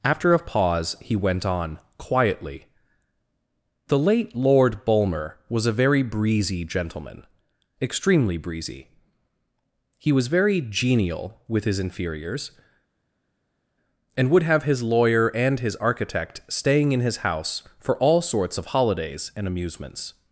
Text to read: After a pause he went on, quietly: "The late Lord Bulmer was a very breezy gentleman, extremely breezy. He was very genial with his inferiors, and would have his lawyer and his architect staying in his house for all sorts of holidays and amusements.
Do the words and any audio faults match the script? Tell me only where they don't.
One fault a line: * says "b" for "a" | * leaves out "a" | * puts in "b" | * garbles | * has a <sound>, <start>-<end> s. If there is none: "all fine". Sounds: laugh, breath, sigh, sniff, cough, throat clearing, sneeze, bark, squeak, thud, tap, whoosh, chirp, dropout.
all fine